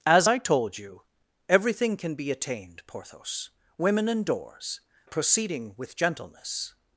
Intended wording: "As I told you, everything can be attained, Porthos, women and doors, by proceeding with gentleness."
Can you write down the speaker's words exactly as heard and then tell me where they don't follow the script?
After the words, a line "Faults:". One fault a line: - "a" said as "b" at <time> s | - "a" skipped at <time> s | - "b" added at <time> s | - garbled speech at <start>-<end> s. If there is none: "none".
"As I told you, everything can be attained, Porthos, women and doors, proceeding with gentleness."
Faults:
- "by" skipped at 4.8 s